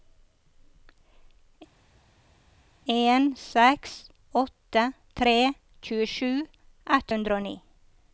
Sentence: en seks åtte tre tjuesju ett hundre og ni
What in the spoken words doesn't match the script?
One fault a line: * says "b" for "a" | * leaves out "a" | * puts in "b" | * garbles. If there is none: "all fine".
all fine